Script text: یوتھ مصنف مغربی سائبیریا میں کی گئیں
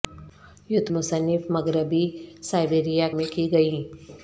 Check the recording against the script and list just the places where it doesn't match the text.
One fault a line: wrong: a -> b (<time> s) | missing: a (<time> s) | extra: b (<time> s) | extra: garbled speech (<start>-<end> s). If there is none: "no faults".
no faults